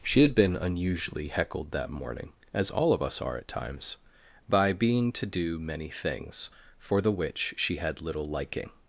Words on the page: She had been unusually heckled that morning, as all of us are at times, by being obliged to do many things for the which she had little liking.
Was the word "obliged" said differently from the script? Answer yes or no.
yes